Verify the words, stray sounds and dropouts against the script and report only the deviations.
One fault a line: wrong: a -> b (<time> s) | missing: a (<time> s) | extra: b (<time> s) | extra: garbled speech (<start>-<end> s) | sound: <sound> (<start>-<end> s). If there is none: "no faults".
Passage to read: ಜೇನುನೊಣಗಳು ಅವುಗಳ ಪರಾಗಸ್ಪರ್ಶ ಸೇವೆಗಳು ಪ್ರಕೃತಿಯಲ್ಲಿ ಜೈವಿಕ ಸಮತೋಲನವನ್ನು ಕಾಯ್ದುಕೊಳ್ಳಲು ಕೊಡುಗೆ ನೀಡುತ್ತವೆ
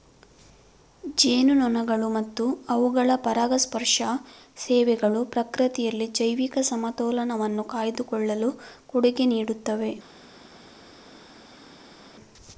extra: ಮತ್ತು (2.1 s)